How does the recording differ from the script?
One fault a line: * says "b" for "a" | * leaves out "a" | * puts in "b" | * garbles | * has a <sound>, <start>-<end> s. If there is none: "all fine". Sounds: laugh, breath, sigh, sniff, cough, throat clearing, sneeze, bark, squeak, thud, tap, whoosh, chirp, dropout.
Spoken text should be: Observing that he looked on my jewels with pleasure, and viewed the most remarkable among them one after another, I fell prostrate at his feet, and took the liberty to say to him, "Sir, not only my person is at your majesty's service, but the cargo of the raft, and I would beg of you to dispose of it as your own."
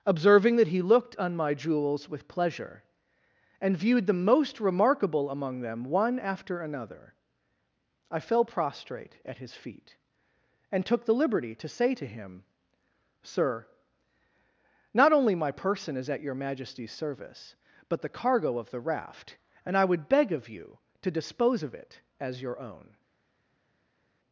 all fine